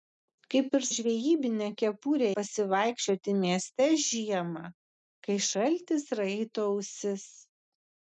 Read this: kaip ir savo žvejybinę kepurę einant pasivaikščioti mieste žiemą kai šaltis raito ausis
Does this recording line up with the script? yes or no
no